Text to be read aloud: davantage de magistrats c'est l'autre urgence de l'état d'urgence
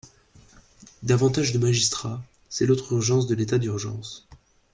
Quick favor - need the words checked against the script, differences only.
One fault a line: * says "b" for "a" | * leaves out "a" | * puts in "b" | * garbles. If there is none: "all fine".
all fine